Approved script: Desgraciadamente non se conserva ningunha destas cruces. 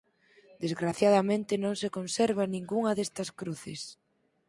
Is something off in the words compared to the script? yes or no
no